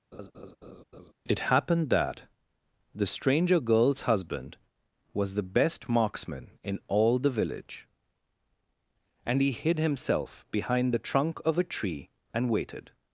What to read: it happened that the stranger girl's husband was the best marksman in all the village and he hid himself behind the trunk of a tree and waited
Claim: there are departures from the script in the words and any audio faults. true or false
true